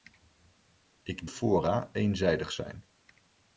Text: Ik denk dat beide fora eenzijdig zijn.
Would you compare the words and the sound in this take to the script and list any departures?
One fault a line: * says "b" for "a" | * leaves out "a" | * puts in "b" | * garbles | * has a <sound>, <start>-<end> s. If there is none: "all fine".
* leaves out "denk dat beide"